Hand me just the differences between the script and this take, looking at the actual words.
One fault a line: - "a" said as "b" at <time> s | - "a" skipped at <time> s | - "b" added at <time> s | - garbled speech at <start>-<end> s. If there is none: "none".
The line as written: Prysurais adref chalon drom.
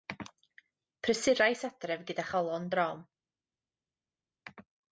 - "gyda" added at 2.1 s